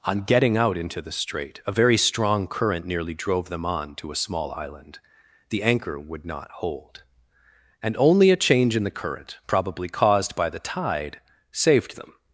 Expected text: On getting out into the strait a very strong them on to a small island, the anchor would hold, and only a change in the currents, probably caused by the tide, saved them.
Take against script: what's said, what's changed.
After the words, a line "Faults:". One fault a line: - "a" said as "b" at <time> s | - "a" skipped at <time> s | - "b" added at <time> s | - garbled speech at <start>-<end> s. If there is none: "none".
On getting out into the strait a very strong current nearly drove them on to a small island, the anchor would not hold, and only a change in the current, probably caused by the tide, saved them.
Faults:
- "current nearly drove" added at 2.5 s
- "not" added at 6.2 s
- "currents" said as "current" at 8.9 s